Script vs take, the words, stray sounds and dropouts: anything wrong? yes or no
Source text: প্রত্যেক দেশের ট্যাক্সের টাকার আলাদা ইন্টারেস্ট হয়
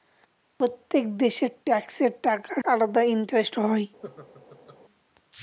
yes